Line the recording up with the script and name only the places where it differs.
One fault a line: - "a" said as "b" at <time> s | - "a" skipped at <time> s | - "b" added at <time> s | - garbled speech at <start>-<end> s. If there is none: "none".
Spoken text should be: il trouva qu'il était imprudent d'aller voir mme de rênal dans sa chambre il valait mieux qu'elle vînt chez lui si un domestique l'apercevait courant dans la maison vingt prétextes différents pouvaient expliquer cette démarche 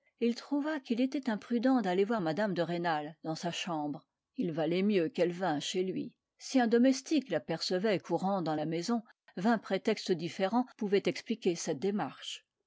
none